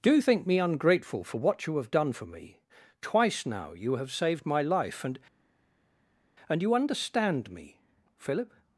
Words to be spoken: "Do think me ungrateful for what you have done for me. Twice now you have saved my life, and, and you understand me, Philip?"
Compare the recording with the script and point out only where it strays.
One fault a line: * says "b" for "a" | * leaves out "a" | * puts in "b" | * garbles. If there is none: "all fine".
all fine